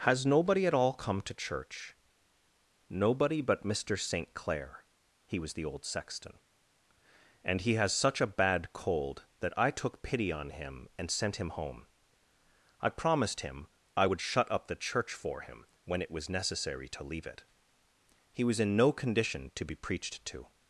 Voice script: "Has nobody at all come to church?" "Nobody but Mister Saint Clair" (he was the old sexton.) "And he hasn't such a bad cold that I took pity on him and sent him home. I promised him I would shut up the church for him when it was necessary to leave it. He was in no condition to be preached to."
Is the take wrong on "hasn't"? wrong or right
wrong